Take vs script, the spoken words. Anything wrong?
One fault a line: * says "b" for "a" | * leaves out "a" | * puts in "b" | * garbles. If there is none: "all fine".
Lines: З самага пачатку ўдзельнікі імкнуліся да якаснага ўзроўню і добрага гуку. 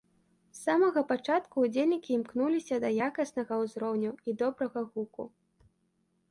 all fine